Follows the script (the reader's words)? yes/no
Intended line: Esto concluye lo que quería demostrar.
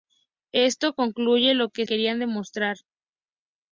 yes